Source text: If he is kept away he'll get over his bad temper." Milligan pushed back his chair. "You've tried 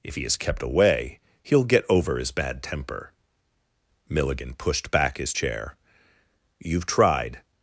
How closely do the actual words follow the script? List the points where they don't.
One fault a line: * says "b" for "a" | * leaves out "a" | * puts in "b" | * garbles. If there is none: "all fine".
all fine